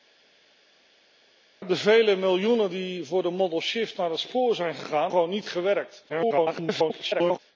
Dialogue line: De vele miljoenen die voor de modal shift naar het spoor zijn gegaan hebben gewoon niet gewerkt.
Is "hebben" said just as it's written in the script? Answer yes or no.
no